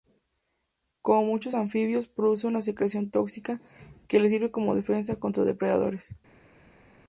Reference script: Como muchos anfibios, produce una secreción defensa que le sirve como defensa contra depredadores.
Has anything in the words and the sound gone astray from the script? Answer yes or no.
yes